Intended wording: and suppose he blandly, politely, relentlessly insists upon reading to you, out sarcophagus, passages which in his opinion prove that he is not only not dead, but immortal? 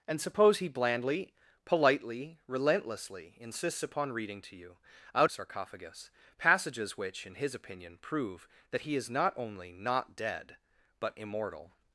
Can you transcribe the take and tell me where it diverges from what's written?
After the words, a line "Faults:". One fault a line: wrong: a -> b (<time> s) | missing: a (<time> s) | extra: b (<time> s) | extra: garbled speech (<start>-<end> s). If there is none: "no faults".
and suppose he blandly, politely, relentlessly insists upon reading to you, out sarcophagus, passages which in his opinion prove that he is not only not dead, but immortal?
Faults:
no faults